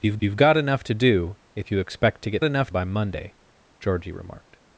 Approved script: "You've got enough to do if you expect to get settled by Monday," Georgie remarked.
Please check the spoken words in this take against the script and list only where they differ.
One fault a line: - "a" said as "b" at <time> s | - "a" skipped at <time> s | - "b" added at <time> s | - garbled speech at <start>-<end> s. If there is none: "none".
- "you've" added at 0.2 s
- "settled" said as "enough" at 2.4 s